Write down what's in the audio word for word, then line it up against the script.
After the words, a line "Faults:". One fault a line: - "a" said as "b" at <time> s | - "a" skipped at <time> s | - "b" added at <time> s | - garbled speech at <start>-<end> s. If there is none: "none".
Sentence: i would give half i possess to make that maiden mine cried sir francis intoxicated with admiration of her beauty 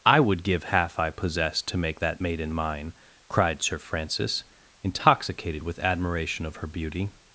i would give half i possess to make that maiden mine cried sir francis intoxicated with admiration of her beauty
Faults:
none